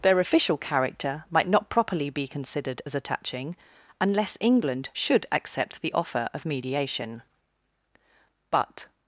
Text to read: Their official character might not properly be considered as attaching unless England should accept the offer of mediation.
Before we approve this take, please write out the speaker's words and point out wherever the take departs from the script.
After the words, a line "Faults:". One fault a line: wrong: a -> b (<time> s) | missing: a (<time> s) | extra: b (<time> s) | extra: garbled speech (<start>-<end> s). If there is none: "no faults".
Their official character might not properly be considered as attaching unless England should accept the offer of mediation. But
Faults:
extra: But (8.5 s)